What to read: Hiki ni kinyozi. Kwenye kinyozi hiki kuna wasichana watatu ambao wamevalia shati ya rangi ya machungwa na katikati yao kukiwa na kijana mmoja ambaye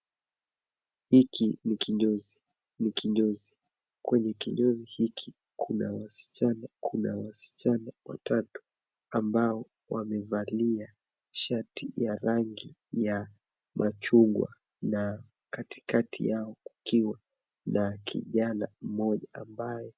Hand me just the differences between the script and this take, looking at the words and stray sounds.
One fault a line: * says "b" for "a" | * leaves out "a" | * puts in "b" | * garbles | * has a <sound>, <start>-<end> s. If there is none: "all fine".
* puts in "ni kinyozi"
* puts in "kuna wasichana"